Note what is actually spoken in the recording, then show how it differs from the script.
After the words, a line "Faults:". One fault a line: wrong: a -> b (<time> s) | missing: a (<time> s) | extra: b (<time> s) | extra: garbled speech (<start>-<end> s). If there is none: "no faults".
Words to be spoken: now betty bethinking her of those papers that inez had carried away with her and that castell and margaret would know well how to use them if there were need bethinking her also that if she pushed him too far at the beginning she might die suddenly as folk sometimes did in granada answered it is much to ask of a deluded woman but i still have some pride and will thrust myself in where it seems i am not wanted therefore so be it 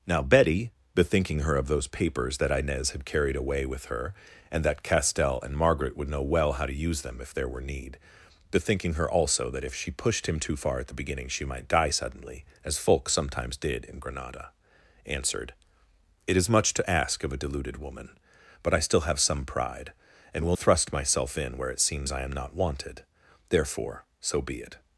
now betty bethinking her of those papers that inez had carried away with her and that castell and margaret would know well how to use them if there were need bethinking her also that if she pushed him too far at the beginning she might die suddenly as folk sometimes did in granada answered it is much to ask of a deluded woman but i still have some pride and will thrust myself in where it seems i am not wanted therefore so be it
Faults:
no faults